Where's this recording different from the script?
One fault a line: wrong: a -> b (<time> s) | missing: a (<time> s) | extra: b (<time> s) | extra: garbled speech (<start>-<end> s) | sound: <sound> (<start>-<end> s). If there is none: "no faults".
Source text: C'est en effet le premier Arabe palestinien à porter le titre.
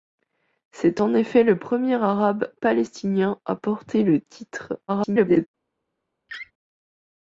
extra: garbled speech (4.9-5.5 s)
sound: laugh (6.3-6.5 s)